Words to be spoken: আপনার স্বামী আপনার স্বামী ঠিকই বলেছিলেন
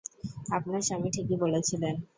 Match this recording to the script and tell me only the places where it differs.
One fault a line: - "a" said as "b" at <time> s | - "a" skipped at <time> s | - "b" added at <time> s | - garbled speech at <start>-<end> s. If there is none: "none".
- "আপনার স্বামী" skipped at 1.1 s